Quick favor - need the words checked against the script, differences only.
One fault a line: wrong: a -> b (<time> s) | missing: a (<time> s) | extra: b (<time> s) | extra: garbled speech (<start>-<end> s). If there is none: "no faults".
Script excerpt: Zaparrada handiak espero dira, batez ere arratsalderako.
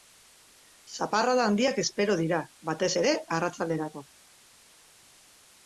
no faults